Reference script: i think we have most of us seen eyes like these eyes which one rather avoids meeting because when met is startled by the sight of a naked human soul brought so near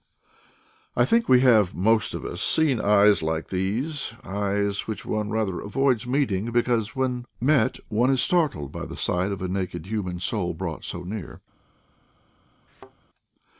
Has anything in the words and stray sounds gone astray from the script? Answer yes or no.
yes